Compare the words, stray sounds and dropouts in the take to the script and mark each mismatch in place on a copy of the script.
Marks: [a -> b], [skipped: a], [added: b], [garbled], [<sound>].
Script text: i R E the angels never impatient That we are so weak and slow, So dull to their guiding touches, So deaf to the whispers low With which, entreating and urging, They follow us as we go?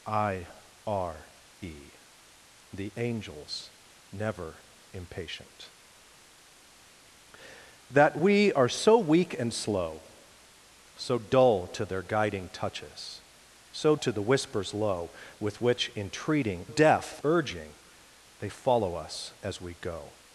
i R E the angels never impatient That we are so weak and slow, So dull to their guiding touches, So [skipped: deaf] to the whispers low With which, entreating [and -> deaf] urging, They follow us as we go?